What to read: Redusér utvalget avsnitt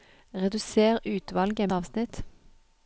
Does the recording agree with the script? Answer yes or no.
yes